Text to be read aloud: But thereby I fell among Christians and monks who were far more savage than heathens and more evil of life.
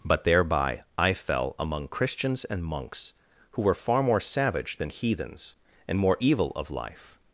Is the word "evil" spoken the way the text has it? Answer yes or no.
yes